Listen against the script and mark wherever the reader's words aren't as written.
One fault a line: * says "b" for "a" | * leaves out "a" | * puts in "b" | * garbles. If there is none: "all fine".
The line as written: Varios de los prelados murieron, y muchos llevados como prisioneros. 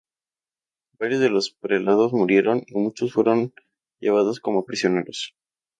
* puts in "fueron"